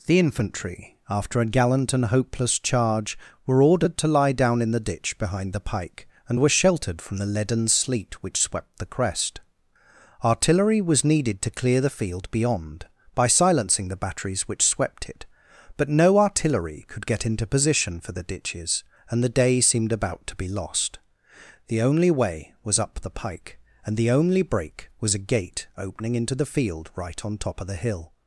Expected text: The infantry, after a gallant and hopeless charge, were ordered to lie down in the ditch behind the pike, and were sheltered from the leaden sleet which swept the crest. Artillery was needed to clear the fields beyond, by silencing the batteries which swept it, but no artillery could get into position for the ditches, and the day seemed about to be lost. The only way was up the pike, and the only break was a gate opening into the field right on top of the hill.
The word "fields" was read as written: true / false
false